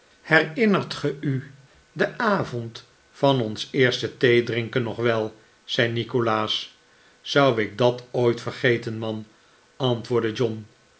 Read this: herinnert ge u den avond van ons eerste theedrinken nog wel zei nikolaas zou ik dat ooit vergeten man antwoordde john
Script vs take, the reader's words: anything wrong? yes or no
no